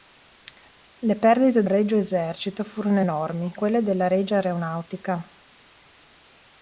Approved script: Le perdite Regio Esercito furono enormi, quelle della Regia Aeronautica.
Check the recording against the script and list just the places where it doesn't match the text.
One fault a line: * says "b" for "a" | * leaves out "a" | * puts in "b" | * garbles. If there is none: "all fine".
all fine